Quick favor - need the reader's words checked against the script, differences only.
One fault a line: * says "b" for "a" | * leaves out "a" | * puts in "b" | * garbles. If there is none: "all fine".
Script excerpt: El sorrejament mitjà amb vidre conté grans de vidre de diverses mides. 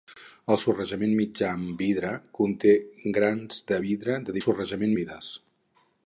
* says "sorrejament" for "diverses"